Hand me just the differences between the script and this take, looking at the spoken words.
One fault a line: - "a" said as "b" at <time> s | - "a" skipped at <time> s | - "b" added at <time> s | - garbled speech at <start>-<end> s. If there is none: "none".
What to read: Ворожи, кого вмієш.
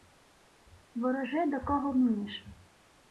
- "до" added at 1.4 s